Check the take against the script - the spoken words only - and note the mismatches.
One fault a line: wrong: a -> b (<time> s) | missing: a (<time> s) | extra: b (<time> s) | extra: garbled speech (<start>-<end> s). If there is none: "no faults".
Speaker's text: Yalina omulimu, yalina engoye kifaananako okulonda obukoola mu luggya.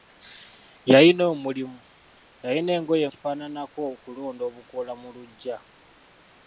no faults